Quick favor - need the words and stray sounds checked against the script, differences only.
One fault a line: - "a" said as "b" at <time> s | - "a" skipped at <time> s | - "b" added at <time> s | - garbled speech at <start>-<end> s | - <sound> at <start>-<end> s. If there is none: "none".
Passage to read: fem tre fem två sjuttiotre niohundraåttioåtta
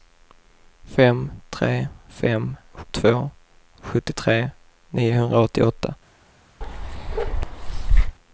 - bark at 6.6-8.2 s